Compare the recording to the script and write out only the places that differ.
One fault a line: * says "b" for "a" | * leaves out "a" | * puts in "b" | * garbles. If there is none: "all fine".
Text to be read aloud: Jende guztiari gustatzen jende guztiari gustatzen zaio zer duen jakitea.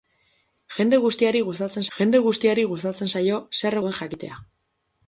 all fine